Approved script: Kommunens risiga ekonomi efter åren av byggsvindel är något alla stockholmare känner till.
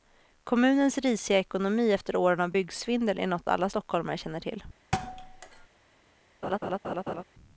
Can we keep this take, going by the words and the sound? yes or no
no